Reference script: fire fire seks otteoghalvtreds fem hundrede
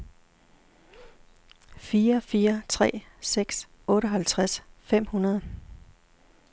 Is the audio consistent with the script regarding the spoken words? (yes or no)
no